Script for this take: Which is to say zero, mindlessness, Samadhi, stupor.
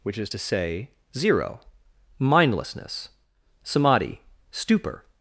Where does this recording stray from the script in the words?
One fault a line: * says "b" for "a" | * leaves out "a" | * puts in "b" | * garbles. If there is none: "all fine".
all fine